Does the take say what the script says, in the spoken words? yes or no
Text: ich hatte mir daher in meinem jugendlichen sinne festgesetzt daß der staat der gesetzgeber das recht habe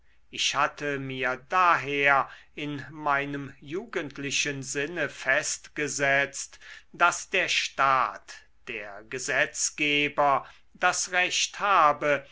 yes